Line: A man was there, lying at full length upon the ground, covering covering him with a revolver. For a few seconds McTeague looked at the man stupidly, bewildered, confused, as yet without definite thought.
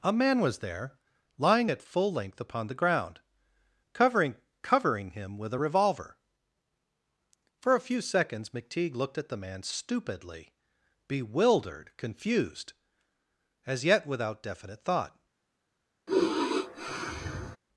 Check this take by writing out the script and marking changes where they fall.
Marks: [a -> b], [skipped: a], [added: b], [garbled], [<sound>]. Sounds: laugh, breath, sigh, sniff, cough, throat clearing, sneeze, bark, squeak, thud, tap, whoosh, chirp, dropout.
A man was there, lying at full length upon the ground, covering covering him with a revolver. For a few seconds McTeague looked at the man stupidly, bewildered, confused, as yet without definite thought. [sigh]